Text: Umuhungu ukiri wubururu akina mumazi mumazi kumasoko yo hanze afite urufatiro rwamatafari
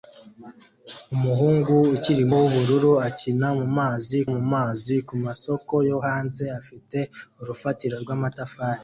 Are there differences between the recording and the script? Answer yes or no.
no